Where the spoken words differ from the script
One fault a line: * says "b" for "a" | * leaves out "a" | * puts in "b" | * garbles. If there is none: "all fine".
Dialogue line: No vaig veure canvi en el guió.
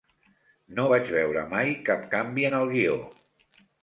* puts in "mai cap"